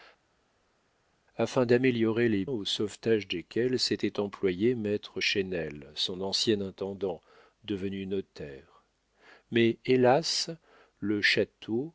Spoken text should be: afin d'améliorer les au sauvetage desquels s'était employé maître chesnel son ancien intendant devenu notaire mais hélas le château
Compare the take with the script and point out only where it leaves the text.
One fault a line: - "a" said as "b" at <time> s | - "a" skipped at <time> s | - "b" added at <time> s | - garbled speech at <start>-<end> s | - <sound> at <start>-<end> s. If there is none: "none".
none